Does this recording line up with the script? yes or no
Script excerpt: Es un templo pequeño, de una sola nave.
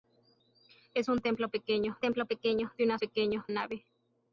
no